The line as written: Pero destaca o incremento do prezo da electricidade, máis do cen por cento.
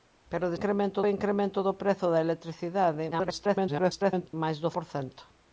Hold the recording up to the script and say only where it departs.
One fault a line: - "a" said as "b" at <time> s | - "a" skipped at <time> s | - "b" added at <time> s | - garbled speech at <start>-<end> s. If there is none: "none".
- "destaca" said as "incremento" at 0.6 s
- garbled speech at 3.1-4.3 s
- "cen" skipped at 4.7 s